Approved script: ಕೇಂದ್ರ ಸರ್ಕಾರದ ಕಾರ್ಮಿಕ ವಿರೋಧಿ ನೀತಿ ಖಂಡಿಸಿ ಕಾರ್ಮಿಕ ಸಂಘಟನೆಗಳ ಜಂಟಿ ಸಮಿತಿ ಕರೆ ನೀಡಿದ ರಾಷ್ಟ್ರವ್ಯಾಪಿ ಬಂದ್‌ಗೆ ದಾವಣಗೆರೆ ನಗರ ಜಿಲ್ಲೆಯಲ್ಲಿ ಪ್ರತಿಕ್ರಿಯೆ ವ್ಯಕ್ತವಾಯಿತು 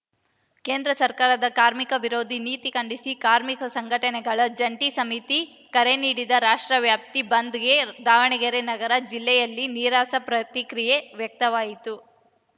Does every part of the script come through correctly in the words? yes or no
no